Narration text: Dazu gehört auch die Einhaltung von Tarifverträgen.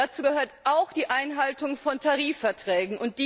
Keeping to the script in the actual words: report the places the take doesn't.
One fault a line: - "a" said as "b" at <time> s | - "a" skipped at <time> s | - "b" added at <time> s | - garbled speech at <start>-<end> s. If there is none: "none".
none